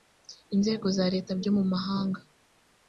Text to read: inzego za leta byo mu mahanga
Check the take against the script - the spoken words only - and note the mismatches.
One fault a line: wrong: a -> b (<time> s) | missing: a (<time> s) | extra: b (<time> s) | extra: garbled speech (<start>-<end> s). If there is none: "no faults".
no faults